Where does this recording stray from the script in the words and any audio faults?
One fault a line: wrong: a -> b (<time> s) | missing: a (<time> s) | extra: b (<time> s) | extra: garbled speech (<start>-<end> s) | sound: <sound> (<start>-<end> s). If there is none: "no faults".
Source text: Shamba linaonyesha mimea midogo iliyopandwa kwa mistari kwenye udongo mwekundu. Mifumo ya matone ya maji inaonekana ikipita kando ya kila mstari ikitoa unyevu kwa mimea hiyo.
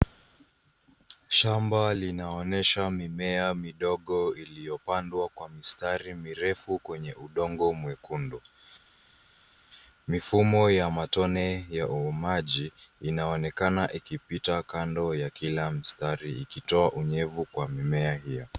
extra: mirefu (6.1 s)